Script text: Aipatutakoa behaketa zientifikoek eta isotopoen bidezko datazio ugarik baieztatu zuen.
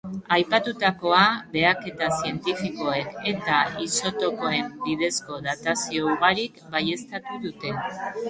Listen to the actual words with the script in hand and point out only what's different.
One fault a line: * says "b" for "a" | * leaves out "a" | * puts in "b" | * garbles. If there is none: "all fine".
* says "dute" for "zuen"